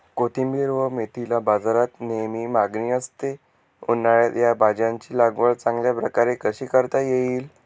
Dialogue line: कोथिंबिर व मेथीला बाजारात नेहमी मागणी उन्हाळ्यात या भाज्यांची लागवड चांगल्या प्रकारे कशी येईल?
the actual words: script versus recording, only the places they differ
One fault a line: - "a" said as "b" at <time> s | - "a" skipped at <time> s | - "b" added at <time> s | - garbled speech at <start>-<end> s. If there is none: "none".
- "असते" added at 2.9 s
- "करता" added at 6.7 s